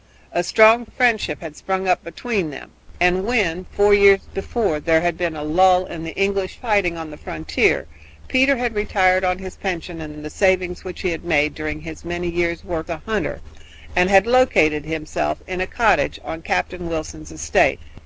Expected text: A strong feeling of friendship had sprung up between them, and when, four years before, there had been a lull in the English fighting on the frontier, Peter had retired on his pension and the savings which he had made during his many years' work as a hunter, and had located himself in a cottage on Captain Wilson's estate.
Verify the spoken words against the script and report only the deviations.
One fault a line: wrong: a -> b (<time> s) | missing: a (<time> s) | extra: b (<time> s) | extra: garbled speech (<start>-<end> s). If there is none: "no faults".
missing: feeling (0.9 s)
missing: as (12.9 s)